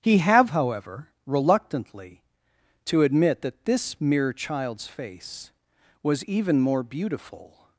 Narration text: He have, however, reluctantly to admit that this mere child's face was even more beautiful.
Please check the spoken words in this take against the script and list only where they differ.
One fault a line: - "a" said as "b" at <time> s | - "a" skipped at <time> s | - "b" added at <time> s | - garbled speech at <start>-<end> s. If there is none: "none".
none